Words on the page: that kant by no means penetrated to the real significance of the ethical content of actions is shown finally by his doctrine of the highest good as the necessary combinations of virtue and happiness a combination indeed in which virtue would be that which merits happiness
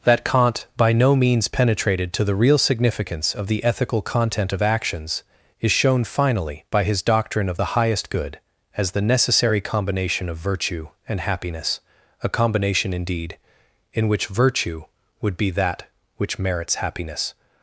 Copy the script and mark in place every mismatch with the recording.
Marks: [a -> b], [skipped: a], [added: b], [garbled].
that kant by no means penetrated to the real significance of the ethical content of actions is shown finally by his doctrine of the highest good as the necessary [combinations -> combination] of virtue and happiness a combination indeed in which virtue would be that which merits happiness